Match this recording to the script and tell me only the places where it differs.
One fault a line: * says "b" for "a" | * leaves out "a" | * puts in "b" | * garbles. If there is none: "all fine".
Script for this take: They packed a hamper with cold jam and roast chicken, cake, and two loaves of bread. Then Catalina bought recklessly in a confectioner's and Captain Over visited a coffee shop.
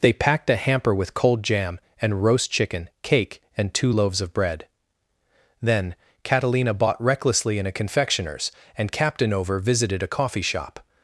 all fine